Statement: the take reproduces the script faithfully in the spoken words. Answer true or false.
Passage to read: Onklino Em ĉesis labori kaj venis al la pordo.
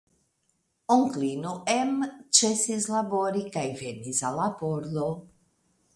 true